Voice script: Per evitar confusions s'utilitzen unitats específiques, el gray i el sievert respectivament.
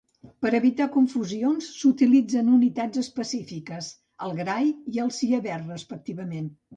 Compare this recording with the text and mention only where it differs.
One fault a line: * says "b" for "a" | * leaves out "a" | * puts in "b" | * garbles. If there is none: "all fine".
all fine